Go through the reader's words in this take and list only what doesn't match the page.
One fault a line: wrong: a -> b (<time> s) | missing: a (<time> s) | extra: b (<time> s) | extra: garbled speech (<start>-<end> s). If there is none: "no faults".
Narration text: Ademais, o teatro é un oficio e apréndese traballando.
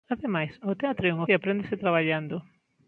missing: oficio (1.2 s)